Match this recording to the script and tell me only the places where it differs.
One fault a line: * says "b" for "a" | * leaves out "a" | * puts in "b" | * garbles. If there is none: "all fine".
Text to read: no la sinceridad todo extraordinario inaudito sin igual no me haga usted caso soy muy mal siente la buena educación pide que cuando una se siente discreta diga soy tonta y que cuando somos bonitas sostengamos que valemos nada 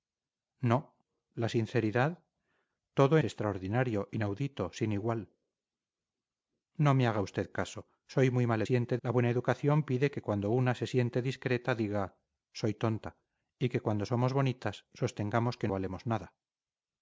all fine